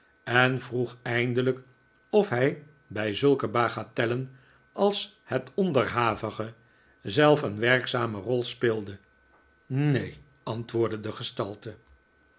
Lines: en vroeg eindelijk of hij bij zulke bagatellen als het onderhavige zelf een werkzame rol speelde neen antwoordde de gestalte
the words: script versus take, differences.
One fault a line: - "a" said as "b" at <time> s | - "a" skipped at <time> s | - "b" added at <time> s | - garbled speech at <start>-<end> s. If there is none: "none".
none